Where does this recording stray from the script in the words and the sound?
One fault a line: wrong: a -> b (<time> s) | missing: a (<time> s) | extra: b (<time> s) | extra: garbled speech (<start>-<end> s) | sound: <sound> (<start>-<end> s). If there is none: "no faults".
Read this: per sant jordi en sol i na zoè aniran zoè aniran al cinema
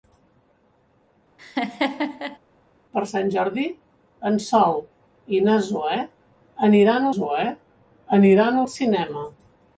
sound: laugh (1.4-2.4 s)